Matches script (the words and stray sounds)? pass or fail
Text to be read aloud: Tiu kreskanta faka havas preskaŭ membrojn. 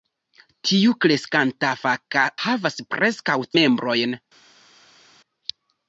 pass